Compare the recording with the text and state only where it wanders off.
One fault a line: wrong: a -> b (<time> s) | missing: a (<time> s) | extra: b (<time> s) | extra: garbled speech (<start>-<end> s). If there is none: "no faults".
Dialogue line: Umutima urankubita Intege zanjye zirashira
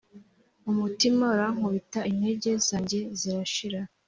no faults